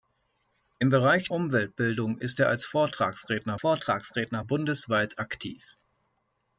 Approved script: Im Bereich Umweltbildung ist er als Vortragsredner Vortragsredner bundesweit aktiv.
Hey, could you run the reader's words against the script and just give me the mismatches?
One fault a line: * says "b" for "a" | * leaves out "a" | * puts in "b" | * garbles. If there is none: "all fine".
all fine